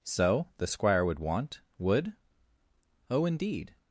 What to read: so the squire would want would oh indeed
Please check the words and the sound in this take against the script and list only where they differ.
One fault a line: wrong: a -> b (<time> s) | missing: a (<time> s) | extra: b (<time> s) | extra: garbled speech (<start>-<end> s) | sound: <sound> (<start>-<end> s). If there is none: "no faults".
no faults